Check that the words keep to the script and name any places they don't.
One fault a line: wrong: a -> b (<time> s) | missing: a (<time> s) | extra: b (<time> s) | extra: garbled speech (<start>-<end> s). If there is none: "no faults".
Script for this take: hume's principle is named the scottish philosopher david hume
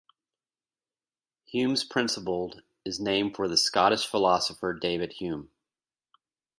extra: for (3.4 s)